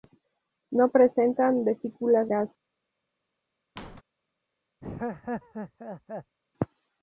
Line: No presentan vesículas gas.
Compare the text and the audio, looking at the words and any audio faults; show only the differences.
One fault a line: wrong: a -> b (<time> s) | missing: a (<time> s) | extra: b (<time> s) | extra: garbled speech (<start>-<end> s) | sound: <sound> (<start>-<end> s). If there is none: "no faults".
sound: squeak (3.8-4.0 s)
sound: laugh (4.8-6.4 s)